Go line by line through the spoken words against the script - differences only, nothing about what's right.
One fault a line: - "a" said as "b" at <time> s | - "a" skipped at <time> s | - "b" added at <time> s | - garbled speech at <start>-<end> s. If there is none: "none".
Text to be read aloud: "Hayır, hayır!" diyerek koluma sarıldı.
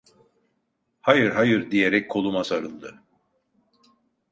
none